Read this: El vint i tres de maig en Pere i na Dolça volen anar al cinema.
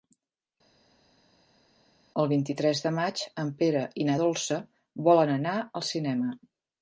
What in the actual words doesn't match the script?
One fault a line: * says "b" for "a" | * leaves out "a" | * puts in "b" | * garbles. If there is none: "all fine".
all fine